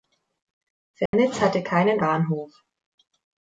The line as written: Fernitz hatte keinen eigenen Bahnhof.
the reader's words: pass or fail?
fail